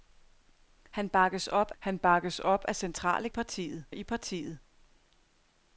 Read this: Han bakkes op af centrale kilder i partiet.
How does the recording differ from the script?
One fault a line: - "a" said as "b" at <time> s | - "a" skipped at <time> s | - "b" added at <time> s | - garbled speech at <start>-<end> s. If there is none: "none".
- "han bakkes op" added at 1.8 s
- "kilder" said as "partiet" at 3.3 s